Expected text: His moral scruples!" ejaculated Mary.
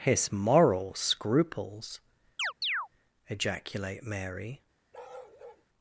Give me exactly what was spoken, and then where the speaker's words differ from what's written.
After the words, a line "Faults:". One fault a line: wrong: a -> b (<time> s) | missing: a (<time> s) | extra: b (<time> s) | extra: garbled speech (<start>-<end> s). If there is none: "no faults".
His moral scruples!" ejaculate Mary.
Faults:
wrong: ejaculated -> ejaculate (3.3 s)